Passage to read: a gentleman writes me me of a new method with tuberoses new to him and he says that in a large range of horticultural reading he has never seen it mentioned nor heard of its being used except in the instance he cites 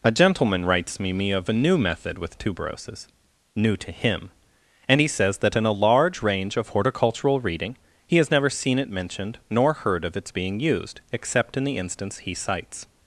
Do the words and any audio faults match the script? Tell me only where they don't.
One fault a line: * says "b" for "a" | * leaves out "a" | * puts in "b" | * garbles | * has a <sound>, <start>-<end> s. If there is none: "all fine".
all fine